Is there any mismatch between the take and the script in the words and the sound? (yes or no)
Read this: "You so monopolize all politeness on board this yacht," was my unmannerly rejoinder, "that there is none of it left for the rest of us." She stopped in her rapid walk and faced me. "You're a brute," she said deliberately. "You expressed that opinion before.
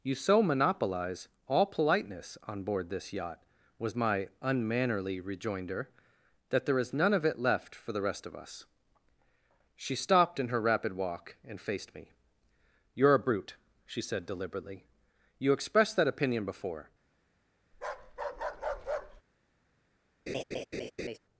yes